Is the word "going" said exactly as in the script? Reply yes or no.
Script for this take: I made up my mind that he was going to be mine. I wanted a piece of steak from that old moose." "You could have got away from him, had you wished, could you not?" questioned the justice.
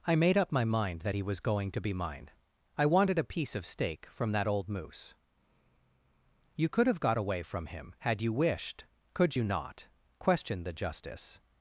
yes